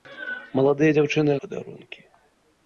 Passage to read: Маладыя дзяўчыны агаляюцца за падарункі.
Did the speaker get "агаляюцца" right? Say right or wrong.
wrong